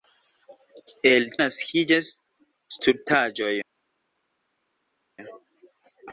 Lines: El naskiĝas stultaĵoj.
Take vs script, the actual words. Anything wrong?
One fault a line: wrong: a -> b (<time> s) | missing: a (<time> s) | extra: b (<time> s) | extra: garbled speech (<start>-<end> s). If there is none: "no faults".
no faults